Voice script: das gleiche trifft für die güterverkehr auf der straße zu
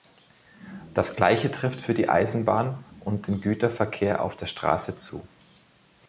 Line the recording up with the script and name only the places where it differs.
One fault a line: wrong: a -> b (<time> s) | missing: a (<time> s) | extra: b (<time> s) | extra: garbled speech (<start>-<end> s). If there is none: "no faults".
extra: eisenbahn und den (2.1 s)